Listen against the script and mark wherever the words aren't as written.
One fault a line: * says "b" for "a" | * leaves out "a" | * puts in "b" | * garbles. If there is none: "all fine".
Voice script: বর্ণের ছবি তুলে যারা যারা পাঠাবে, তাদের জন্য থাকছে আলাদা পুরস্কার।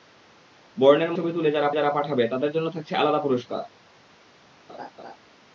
all fine